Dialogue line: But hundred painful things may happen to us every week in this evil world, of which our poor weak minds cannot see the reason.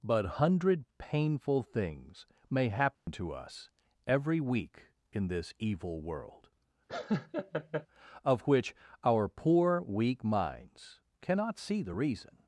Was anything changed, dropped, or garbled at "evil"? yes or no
no